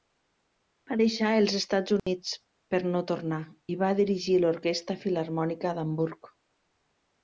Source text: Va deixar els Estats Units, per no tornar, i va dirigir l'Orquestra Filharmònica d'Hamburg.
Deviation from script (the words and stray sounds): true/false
true